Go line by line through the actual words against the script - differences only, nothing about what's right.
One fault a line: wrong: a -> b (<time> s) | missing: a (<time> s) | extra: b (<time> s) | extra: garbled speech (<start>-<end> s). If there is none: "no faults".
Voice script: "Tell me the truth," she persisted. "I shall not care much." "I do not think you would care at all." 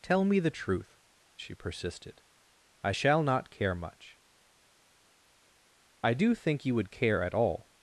missing: not (6.3 s)